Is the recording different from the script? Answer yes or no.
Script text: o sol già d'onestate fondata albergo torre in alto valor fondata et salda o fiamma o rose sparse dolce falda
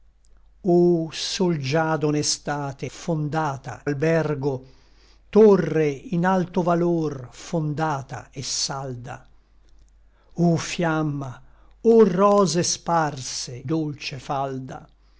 no